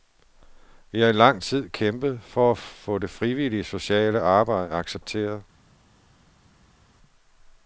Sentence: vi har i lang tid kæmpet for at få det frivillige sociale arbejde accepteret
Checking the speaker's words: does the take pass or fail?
pass